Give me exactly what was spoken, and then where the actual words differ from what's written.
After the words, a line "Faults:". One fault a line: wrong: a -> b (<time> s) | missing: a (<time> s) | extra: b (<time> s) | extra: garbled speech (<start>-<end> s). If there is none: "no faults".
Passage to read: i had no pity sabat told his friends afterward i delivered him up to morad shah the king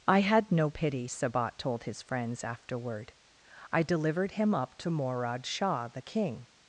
i had no pity sabat told his friends afterward i delivered him up to morad shah the king
Faults:
no faults